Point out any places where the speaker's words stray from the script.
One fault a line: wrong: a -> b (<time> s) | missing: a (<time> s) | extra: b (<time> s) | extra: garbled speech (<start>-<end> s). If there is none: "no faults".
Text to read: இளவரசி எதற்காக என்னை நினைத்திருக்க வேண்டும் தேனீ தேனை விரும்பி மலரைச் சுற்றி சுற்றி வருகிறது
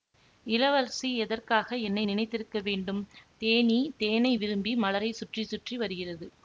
no faults